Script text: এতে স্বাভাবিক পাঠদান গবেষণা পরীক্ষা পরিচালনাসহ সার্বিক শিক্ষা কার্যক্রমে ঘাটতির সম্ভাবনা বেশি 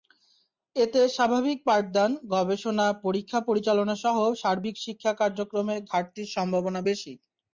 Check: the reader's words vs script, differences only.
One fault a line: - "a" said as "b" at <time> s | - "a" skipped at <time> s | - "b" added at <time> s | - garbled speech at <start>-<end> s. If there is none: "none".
none